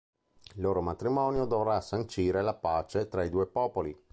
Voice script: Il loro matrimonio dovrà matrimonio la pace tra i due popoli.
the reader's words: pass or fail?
fail